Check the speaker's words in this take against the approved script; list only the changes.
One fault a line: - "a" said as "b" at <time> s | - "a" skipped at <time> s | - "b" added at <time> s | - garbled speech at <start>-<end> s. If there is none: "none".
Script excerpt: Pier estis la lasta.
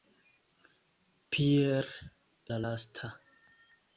- "estis" skipped at 1.9 s